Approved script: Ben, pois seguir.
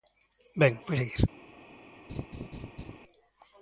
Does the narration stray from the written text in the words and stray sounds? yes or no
yes